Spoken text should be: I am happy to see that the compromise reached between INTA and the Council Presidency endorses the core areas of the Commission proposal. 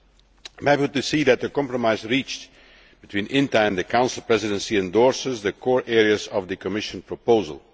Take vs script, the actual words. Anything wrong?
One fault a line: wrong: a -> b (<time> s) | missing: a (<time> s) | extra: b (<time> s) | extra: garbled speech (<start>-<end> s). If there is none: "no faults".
no faults